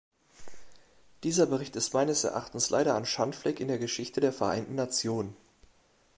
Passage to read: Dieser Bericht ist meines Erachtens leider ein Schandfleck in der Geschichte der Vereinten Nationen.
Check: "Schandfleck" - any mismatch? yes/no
no